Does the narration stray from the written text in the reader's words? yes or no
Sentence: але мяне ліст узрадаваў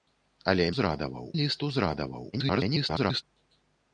yes